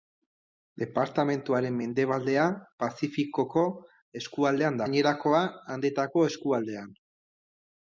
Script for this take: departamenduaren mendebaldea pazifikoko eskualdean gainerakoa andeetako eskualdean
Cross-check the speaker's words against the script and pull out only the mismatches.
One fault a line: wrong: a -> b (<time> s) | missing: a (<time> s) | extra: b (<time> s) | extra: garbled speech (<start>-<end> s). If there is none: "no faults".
no faults